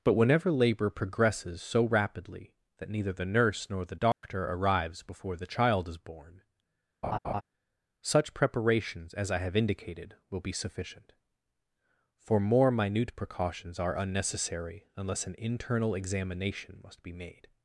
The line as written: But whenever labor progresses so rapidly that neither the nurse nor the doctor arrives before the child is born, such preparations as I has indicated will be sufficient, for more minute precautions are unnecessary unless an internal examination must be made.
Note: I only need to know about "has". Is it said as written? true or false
false